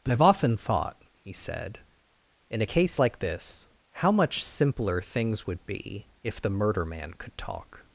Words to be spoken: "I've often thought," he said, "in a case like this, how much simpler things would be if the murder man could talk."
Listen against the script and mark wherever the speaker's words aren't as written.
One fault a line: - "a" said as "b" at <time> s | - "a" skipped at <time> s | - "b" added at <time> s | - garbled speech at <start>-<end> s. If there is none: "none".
none